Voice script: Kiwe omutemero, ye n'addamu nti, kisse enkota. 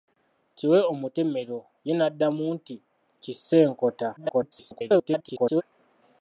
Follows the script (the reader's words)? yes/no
no